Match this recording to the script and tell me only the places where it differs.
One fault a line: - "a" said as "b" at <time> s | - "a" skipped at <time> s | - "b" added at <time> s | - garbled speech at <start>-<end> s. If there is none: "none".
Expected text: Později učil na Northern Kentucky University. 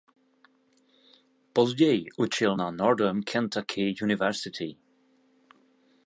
none